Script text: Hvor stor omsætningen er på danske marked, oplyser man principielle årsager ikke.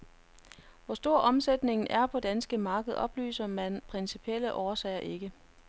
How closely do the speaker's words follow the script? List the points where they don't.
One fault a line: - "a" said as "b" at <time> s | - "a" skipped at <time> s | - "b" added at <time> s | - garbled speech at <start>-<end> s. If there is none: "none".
none